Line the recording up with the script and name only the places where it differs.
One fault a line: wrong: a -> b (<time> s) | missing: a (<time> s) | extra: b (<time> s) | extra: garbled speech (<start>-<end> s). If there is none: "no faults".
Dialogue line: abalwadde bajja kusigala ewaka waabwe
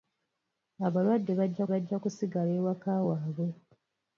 extra: bajja (1.7 s)